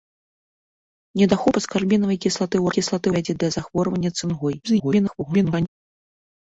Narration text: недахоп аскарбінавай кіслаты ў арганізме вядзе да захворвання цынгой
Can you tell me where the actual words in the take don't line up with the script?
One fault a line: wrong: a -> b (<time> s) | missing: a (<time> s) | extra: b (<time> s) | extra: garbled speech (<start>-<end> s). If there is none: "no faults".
wrong: арганізме -> кіслаты (2.8 s)
extra: garbled speech (4.6-5.7 s)